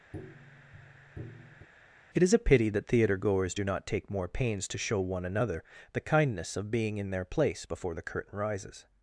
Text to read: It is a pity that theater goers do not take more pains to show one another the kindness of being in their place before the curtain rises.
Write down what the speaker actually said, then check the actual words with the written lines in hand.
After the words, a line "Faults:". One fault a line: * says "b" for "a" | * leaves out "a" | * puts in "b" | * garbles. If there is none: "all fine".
It is a pity that theater goers do not take more pains to show one another the kindness of being in their place before the curtain rises.
Faults:
all fine